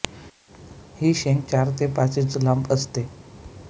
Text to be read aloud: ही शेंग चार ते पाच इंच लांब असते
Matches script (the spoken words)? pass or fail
pass